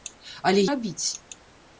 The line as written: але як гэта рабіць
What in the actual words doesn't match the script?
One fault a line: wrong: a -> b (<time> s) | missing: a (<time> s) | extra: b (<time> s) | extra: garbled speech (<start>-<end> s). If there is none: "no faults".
missing: як гэта (0.6 s)